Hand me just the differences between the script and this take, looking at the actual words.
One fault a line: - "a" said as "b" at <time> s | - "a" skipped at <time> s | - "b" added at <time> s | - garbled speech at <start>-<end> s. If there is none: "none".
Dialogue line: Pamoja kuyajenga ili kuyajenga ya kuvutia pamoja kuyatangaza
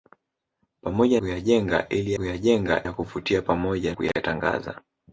none